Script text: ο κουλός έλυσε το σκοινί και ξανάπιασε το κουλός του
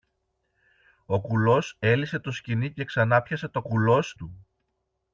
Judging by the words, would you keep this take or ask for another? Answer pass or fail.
pass